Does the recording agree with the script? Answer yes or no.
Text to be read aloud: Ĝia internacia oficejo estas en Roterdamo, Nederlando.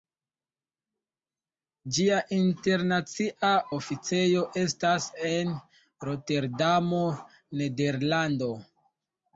yes